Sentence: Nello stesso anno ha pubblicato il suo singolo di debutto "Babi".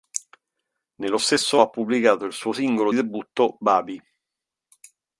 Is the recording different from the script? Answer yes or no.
yes